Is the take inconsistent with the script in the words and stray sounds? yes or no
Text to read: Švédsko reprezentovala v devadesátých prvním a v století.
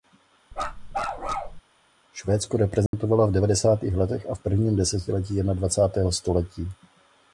yes